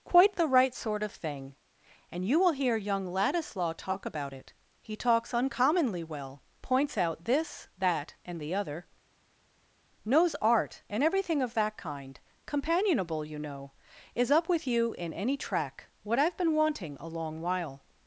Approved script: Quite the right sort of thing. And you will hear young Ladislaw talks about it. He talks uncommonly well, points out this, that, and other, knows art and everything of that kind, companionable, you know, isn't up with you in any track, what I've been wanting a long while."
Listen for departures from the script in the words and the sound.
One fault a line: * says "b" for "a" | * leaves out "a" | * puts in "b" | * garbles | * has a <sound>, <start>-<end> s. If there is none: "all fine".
* says "talk" for "talks"
* puts in "the"
* says "is" for "isn't"